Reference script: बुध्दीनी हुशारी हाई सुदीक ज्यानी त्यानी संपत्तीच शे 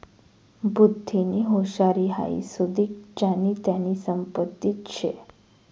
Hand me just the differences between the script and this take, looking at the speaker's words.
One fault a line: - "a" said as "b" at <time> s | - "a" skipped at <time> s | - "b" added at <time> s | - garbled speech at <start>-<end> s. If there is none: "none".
none